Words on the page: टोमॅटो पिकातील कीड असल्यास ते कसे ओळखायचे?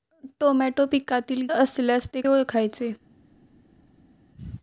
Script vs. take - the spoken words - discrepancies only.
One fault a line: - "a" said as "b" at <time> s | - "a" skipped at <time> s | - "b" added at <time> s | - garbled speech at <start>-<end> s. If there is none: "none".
- "कीड" skipped at 1.5 s
- "कसे" skipped at 2.2 s